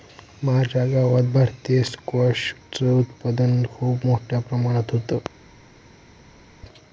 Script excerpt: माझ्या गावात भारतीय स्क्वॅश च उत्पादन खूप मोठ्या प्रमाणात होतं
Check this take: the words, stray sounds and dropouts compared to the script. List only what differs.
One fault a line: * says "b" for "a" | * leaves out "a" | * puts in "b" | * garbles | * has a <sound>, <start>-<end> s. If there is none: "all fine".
all fine